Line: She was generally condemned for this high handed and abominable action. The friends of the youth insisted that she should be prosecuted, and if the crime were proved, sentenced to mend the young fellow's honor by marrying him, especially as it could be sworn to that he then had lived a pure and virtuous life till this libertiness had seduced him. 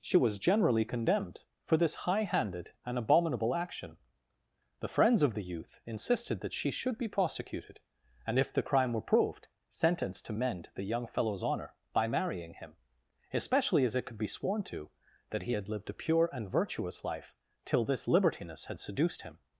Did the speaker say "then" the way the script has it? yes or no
no